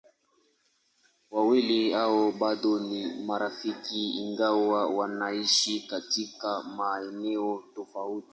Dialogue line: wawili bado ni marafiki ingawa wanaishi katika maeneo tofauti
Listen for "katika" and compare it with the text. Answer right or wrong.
right